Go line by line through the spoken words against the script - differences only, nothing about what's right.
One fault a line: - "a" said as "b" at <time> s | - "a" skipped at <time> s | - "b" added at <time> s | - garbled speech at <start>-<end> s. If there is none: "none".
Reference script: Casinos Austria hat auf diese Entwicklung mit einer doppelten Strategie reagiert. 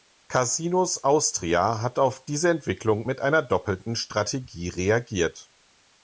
none